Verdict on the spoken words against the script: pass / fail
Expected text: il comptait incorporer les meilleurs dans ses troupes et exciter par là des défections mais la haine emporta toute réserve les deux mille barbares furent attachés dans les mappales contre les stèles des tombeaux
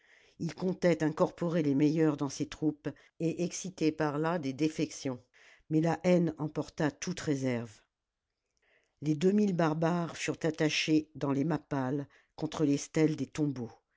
pass